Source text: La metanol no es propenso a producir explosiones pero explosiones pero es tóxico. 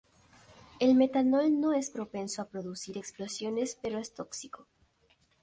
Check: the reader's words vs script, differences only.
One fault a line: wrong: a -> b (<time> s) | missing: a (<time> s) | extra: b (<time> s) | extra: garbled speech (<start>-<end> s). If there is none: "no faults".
wrong: La -> El (0.8 s)
missing: explosiones pero (4.0 s)